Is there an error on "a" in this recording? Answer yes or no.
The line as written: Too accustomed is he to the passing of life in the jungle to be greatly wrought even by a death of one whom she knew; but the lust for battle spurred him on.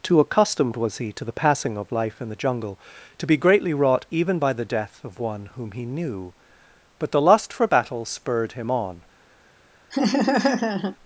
yes